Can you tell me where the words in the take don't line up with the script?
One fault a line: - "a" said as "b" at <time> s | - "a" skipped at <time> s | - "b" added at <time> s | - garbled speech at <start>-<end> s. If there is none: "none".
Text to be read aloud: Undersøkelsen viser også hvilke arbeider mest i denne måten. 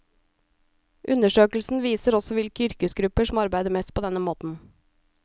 - "yrkesgrupper som" added at 2.7 s
- "i" said as "på" at 3.9 s